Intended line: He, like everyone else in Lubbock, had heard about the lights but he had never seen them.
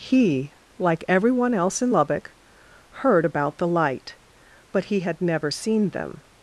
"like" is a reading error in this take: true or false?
false